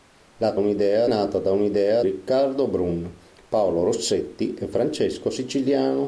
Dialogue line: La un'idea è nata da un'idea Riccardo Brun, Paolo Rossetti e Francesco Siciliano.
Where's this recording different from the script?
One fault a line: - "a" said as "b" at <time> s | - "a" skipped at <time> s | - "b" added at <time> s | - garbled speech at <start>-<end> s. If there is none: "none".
none